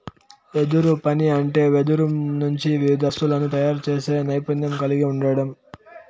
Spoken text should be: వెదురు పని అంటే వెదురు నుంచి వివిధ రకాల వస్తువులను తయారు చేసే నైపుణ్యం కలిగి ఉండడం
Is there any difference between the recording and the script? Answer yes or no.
yes